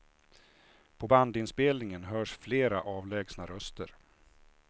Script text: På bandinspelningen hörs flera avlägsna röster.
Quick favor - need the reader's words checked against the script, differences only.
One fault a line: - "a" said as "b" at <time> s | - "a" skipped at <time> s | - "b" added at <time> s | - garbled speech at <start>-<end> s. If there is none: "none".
none